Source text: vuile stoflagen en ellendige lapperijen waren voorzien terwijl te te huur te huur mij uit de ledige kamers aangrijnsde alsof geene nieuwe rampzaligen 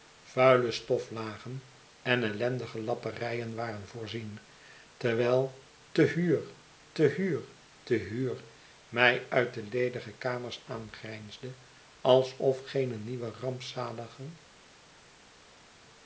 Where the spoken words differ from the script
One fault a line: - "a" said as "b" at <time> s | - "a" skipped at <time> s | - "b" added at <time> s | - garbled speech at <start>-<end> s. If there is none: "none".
- "huur" added at 6.0 s